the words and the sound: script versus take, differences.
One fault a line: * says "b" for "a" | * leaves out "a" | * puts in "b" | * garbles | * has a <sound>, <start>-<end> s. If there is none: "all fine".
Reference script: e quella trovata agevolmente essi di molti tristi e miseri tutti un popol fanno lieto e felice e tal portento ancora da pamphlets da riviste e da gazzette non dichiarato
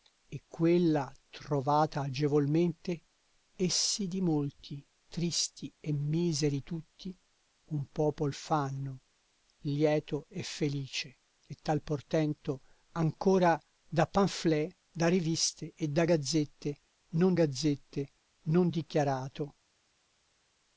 * puts in "gazzette non"